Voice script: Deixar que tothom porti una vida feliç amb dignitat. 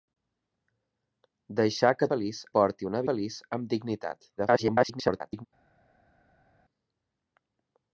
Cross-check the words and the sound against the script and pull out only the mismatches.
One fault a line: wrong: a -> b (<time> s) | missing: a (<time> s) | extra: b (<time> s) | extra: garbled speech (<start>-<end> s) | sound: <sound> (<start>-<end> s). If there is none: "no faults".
wrong: tothom -> feliç (2.1 s)
missing: vida (3.0 s)
extra: garbled speech (4.4-5.5 s)